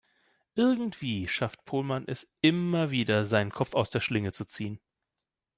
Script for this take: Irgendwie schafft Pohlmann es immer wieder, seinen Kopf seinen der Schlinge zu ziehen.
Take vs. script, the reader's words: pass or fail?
fail